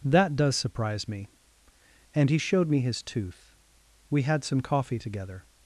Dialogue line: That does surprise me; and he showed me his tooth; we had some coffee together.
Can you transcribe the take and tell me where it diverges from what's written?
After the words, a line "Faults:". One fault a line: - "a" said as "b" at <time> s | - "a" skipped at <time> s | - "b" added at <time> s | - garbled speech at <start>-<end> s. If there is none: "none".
That does surprise me; and he showed me his tooth; we had some coffee together.
Faults:
none